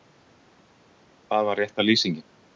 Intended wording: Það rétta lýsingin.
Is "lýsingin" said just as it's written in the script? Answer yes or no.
yes